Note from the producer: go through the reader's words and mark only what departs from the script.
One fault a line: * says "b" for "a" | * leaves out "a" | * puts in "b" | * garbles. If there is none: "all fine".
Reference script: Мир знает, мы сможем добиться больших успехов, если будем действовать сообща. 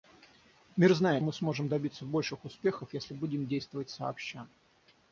all fine